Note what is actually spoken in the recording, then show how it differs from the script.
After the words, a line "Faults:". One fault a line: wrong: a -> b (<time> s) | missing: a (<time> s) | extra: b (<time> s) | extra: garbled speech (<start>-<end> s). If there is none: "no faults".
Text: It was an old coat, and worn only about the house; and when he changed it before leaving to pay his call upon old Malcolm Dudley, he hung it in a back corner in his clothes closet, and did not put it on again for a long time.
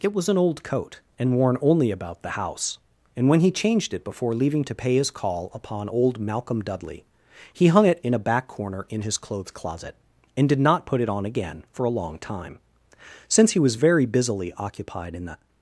It was an old coat, and worn only about the house; and when he changed it before leaving to pay his call upon old Malcolm Dudley, he hung it in a back corner in his clothes closet, and did not put it on again for a long time. Since he was very busily occupied in the
Faults:
extra: Since he was very busily occupied in the (13.3 s)